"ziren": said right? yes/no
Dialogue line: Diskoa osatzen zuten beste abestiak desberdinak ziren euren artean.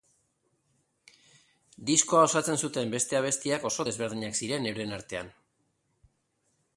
yes